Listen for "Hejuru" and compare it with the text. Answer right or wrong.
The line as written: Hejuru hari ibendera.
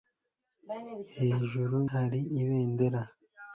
right